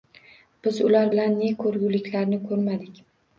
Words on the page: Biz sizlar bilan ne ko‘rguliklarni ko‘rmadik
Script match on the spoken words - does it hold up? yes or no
no